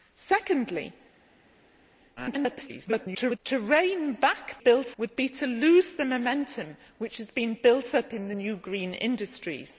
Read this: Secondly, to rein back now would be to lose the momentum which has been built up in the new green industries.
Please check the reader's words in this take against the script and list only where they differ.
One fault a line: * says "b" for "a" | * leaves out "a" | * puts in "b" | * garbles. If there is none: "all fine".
* garbles
* says "built" for "now"